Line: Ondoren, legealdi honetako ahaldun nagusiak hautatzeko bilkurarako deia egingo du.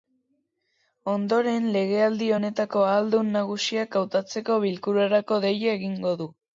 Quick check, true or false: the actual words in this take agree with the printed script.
true